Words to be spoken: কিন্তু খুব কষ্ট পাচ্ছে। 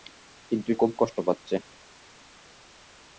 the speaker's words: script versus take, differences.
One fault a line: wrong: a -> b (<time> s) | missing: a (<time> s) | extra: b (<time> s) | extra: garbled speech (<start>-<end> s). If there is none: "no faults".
no faults